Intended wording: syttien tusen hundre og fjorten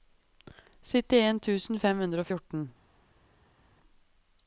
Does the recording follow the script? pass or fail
fail